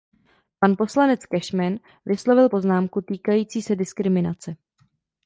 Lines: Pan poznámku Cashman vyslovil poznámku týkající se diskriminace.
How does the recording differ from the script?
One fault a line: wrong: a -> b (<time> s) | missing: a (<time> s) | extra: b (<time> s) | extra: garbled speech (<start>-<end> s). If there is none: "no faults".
wrong: poznámku -> poslanec (0.8 s)